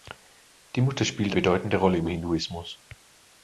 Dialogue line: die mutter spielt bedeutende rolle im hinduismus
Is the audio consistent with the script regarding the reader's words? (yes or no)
yes